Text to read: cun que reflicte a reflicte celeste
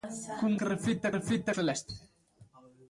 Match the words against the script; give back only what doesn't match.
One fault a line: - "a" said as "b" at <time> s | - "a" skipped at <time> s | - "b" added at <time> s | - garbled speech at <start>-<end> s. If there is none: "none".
none